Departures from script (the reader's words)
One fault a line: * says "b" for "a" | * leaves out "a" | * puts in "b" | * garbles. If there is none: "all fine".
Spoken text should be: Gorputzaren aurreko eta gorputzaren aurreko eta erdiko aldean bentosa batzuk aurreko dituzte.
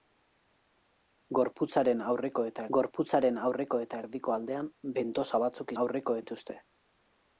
all fine